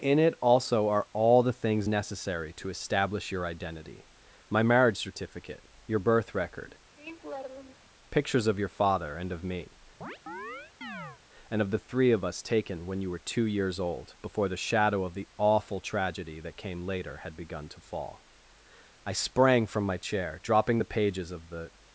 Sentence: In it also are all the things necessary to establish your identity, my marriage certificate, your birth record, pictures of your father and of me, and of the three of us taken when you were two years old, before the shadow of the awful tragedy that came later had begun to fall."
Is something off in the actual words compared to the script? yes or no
yes